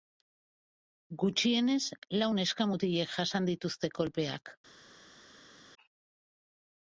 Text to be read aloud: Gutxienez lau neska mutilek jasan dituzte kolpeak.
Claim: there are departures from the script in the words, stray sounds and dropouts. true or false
false